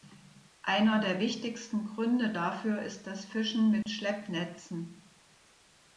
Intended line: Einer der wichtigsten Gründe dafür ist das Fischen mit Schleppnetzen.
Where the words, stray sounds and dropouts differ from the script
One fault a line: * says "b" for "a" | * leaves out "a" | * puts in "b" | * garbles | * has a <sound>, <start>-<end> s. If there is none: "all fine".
* has a dropout, 3.8-3.9 s